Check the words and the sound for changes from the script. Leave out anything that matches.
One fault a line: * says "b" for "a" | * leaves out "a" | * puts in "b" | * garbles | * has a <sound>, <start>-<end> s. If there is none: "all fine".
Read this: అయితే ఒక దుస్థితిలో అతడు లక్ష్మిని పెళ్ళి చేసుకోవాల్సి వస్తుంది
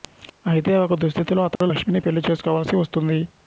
* has a dropout, 1.6-1.6 s